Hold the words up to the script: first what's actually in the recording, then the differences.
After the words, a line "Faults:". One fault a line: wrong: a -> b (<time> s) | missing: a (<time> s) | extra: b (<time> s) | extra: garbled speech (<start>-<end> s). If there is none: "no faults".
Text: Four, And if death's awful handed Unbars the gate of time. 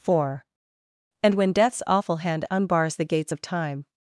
Four, And when death's awful hand Unbars the gates of time.
Faults:
wrong: if -> when (1.4 s)
wrong: handed -> hand (2.2 s)
wrong: gate -> gates (3.0 s)